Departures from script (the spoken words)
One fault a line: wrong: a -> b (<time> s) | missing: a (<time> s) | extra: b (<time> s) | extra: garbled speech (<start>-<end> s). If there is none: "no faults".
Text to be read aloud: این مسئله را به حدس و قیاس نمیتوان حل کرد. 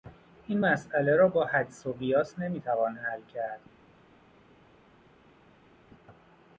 wrong: به -> با (1.3 s)